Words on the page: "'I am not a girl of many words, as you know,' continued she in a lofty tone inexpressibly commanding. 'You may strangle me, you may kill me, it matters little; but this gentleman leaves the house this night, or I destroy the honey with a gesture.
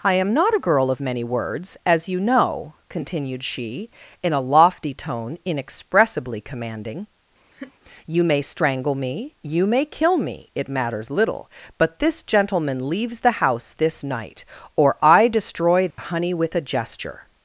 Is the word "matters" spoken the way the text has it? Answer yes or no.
yes